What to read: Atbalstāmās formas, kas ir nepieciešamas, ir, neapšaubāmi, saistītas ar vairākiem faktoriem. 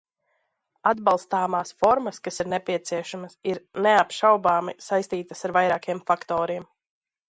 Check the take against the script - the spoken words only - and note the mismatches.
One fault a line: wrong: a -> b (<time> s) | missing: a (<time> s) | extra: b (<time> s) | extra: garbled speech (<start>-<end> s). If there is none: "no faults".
no faults